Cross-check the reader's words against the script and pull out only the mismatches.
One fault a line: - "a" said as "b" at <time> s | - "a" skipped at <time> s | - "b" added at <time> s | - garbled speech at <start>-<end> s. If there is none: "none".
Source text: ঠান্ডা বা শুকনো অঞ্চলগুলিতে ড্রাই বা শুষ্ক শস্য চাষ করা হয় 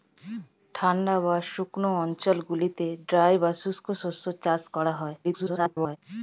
- garbled speech at 5.2-6.0 s